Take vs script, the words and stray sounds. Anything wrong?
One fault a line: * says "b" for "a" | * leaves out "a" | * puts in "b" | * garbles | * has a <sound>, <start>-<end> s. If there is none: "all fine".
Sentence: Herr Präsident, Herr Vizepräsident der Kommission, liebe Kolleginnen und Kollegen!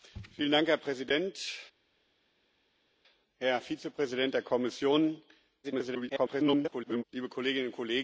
* garbles